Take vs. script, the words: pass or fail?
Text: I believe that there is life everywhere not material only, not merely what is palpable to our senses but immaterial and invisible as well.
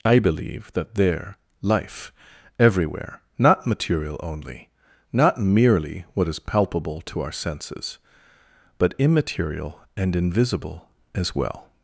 fail